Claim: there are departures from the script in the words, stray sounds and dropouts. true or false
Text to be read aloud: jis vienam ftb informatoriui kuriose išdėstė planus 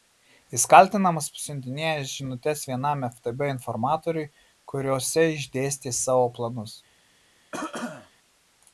true